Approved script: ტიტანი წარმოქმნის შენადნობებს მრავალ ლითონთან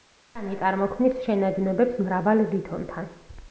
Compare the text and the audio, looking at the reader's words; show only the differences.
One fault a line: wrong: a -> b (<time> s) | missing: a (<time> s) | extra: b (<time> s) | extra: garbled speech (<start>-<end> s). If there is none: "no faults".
no faults